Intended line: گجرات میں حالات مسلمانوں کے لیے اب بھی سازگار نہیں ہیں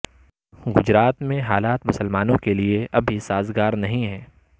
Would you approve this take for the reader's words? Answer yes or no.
yes